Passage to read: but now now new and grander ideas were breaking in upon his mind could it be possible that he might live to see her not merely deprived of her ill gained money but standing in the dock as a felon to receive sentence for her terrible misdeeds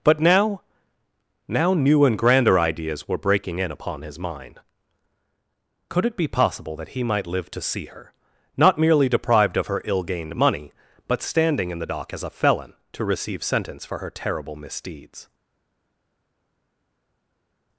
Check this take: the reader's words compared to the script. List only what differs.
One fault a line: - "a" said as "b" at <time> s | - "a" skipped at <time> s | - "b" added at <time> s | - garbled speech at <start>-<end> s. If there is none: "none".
none